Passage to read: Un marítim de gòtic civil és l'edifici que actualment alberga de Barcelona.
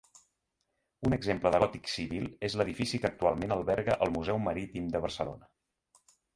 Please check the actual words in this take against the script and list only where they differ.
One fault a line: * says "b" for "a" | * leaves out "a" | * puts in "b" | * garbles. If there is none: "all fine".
* says "exemple" for "marítim"
* puts in "el museu marítim"